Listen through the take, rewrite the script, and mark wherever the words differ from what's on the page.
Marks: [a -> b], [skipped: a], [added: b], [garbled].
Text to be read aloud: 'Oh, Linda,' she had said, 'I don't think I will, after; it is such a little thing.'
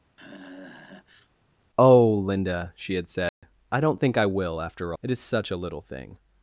'Oh, Linda,' she had said, 'I don't think I will, after; it is such a little thing.'